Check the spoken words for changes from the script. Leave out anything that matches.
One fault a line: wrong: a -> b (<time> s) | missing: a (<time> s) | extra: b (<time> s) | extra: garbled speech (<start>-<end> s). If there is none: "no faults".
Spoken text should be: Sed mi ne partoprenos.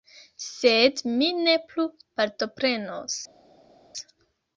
extra: plu (1.7 s)